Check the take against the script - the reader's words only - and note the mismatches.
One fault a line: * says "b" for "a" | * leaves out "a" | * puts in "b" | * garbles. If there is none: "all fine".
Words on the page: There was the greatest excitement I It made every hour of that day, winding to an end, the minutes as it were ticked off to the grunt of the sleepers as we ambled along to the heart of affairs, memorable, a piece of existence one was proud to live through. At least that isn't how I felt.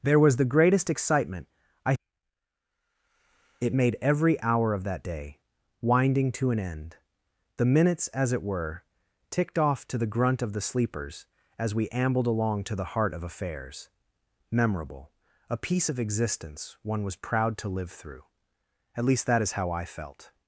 * says "is" for "isn't"